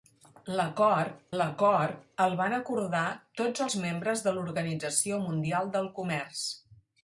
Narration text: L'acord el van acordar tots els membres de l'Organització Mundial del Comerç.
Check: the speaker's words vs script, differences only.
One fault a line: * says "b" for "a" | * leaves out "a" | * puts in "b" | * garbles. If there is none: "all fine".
* puts in "l'acord"